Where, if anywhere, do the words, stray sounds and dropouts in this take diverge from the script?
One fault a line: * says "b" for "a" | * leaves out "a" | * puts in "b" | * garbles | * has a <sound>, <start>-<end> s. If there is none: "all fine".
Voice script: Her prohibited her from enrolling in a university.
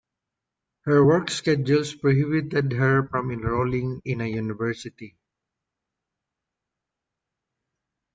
* puts in "work schedules"